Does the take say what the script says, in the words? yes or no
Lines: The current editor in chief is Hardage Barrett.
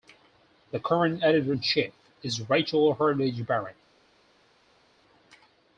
no